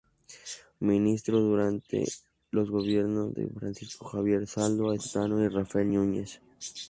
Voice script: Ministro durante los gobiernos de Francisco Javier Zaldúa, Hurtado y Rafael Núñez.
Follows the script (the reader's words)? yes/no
yes